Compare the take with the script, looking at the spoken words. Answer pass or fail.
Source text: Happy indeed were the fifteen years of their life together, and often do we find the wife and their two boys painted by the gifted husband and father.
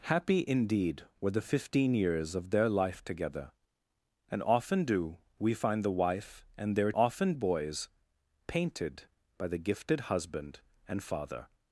fail